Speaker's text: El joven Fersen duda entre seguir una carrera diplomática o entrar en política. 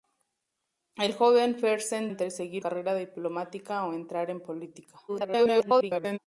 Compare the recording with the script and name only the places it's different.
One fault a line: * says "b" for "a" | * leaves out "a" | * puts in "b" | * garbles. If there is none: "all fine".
* leaves out "duda"
* leaves out "una"
* garbles